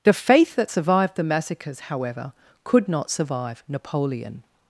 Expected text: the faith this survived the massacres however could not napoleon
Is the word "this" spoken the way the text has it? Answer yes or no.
no